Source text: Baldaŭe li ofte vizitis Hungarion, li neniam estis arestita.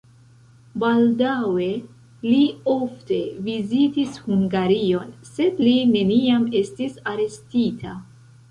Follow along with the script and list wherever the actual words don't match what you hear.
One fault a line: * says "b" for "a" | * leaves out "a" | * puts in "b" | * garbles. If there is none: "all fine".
* puts in "sed"